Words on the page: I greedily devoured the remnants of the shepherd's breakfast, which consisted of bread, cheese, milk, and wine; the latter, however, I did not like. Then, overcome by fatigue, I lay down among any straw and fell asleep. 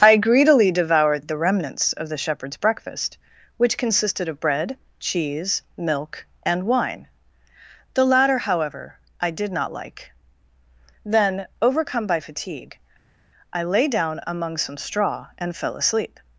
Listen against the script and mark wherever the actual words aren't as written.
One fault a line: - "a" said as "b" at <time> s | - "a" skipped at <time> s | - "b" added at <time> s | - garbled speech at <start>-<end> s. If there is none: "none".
- "any" said as "some" at 14.6 s